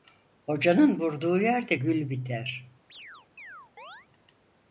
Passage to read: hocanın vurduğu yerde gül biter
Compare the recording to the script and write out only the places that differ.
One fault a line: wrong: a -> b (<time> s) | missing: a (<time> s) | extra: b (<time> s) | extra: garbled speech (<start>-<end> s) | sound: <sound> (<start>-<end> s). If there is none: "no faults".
sound: chirp (2.9-4.1 s)